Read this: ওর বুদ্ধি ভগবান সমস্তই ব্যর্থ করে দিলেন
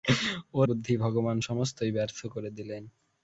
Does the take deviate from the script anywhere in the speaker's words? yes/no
no